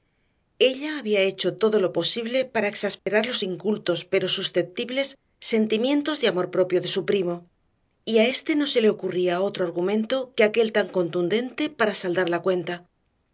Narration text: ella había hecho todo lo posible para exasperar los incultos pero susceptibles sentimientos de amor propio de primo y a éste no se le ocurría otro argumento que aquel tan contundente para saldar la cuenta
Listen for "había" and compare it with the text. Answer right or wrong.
right